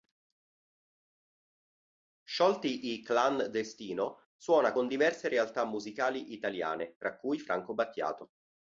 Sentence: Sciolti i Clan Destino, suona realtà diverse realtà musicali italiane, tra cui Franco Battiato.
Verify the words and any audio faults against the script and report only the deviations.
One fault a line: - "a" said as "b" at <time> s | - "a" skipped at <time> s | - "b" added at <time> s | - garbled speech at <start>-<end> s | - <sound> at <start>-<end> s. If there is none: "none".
- "realtà" said as "con" at 4.7 s